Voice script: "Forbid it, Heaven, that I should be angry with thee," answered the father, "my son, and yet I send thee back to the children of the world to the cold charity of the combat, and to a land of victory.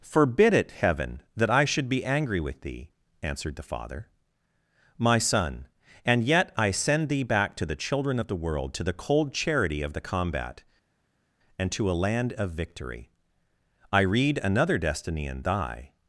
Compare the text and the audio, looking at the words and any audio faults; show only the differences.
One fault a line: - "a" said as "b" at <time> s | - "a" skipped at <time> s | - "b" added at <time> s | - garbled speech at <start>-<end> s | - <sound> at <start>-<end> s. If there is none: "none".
- "I read another destiny in thy" added at 13.9 s